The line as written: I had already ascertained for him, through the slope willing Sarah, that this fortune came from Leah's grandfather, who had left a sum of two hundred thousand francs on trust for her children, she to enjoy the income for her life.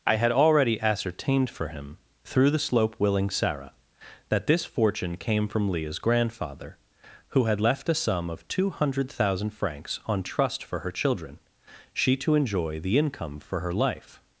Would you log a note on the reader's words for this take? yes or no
no